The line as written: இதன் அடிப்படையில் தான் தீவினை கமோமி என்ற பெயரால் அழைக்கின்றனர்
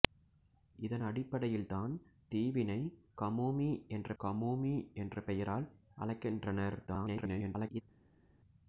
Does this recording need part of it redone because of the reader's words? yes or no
yes